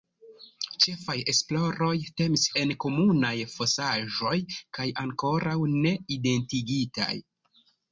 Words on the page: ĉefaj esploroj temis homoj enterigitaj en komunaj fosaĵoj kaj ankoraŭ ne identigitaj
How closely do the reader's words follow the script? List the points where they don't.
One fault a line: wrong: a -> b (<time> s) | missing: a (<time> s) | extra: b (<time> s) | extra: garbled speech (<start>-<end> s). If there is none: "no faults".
missing: homoj enterigitaj (2.5 s)